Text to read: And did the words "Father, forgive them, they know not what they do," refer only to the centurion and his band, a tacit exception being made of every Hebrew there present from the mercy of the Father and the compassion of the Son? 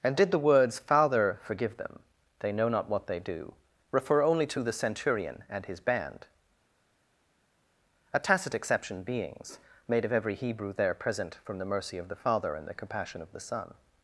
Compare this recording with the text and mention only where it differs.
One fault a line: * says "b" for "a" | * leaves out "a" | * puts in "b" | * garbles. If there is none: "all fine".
* says "beings" for "being"